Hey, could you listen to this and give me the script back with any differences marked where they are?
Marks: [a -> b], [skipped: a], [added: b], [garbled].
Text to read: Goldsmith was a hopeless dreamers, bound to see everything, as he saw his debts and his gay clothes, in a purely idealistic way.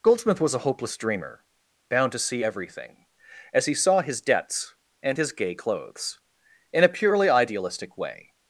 Goldsmith was a hopeless [dreamers, -> dreamer] bound to see everything, as he saw his debts and his gay clothes, in a purely idealistic way.